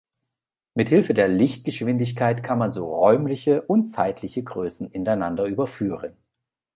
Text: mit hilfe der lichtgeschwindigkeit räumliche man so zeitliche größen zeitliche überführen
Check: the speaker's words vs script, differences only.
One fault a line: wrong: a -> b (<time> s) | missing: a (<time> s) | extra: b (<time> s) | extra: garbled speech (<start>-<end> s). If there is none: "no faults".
wrong: räumliche -> kann (2.4 s)
extra: räumliche und (2.9 s)
wrong: zeitliche -> ineinander (4.9 s)